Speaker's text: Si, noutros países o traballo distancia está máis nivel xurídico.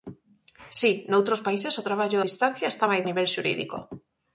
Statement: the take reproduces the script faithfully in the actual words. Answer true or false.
true